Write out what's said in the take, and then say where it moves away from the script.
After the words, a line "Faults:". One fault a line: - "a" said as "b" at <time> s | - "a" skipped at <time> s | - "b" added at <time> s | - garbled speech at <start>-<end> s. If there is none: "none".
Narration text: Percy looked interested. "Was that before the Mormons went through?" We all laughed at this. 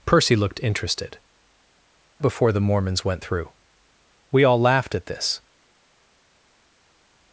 Percy looked interested. "Before the Mormons went through?" We all laughed at this.
Faults:
- "Was that" skipped at 1.2 s